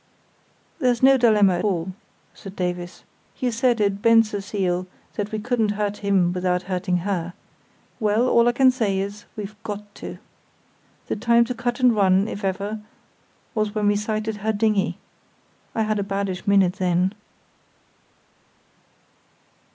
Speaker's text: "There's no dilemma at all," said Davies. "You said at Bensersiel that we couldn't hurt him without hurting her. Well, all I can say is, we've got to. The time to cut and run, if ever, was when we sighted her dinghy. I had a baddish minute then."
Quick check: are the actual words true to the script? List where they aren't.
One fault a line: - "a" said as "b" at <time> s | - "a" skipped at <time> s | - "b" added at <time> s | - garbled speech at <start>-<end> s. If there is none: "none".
- "at" skipped at 1.6 s